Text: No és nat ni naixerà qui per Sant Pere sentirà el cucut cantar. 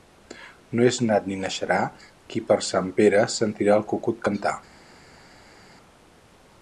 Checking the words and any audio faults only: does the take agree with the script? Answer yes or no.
yes